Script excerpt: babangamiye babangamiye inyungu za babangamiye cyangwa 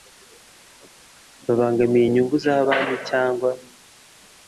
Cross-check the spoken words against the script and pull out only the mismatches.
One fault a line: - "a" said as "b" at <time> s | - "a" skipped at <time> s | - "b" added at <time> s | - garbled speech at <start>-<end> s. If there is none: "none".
- "babangamiye" skipped at 2.0 s
- "babangamiye" said as "banki" at 2.7 s